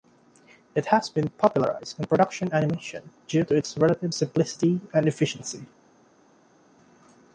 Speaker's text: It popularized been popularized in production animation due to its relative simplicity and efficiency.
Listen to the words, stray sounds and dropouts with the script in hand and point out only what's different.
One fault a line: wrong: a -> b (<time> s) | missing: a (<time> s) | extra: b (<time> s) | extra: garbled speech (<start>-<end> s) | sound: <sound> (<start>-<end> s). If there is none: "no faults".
wrong: popularized -> has (0.9 s)